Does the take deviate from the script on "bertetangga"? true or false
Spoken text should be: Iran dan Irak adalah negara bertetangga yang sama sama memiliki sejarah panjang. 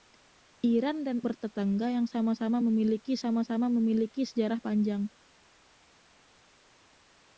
true